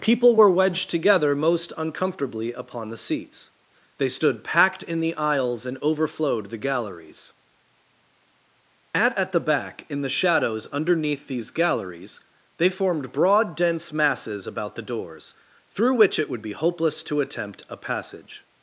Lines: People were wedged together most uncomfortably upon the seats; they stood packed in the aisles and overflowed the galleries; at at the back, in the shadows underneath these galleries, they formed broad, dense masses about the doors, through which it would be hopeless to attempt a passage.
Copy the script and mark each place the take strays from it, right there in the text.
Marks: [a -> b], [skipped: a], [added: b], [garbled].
People were wedged together most uncomfortably upon the seats; they stood packed in the aisles and overflowed the galleries; at at the back, in the shadows underneath these galleries, they formed broad, dense masses about the doors, through which it would be hopeless to attempt a passage.